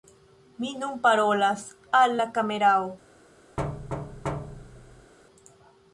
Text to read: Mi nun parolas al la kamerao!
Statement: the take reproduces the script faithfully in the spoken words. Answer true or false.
true